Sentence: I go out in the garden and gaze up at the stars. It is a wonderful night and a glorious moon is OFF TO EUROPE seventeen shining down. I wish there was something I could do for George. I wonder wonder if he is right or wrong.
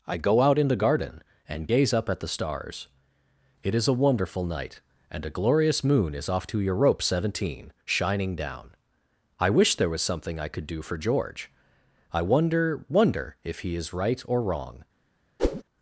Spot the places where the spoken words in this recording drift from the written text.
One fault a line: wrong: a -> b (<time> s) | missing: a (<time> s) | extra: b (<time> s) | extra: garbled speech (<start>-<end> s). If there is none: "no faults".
no faults